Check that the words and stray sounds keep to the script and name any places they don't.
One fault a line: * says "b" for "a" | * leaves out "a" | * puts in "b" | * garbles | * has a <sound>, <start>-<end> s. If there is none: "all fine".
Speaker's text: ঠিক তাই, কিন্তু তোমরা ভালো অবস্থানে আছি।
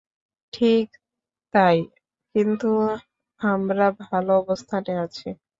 * says "আমরা" for "তোমরা"